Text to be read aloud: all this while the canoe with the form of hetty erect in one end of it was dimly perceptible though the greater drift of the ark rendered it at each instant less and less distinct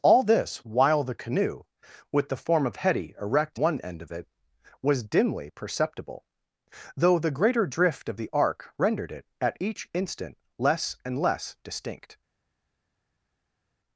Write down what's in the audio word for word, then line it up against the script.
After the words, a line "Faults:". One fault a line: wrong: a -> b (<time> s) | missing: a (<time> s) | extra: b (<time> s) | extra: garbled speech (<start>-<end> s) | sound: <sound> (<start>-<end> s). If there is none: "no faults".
all this while the canoe with the form of hetty erect one end of it was dimly perceptible though the greater drift of the ark rendered it at each instant less and less distinct
Faults:
missing: in (3.6 s)